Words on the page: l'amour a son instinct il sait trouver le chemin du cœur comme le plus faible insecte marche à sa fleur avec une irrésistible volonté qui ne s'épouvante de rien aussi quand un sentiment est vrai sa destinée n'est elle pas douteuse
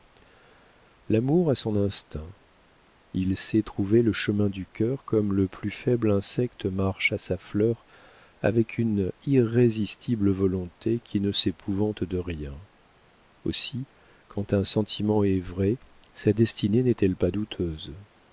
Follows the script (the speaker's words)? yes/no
yes